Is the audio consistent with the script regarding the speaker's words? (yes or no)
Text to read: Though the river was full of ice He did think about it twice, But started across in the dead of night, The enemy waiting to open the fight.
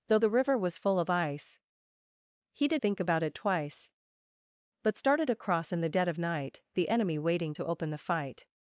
yes